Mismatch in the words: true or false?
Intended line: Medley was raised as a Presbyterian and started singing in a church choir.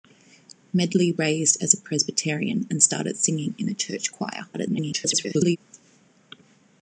true